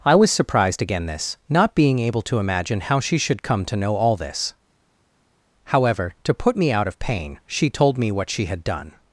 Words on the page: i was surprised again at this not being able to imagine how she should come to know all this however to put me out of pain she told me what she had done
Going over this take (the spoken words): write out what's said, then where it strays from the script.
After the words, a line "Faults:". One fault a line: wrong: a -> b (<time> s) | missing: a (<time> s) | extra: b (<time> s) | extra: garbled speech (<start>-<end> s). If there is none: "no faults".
i was surprised again this not being able to imagine how she should come to know all this however to put me out of pain she told me what she had done
Faults:
missing: at (1.1 s)